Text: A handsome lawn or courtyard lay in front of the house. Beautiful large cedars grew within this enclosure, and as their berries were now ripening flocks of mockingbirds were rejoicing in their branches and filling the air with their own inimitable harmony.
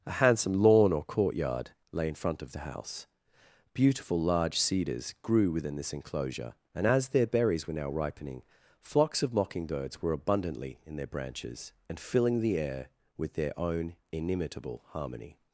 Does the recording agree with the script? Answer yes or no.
no